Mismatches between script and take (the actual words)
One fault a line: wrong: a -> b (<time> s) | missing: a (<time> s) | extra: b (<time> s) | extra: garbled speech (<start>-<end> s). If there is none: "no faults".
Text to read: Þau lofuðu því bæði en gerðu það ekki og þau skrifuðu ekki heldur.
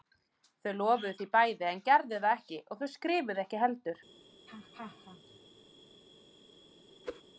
no faults